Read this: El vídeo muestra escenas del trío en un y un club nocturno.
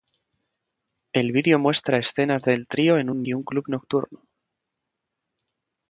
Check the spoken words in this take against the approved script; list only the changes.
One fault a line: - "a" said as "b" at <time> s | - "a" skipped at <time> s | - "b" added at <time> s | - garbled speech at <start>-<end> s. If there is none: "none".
none